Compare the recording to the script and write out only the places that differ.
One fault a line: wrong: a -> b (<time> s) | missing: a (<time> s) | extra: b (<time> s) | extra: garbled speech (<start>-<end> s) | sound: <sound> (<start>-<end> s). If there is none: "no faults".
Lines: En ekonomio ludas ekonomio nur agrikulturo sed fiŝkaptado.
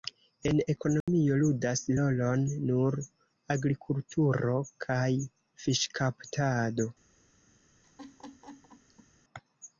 sound: dropout (1.0-1.1 s)
wrong: ekonomio -> rolon (2.0 s)
wrong: sed -> kaj (4.9 s)
sound: laugh (7.8-9.1 s)